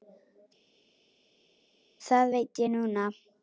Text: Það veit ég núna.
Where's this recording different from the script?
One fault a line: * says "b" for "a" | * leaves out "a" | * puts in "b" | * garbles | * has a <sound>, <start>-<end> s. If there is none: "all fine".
all fine